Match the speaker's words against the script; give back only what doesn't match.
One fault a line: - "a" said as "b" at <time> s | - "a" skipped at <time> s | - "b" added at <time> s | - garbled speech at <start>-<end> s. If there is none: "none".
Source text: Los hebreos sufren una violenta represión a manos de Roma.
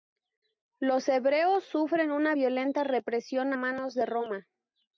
- "a" skipped at 3.5 s